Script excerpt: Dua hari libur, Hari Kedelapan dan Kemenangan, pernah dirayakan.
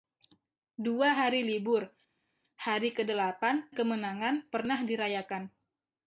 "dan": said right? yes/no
no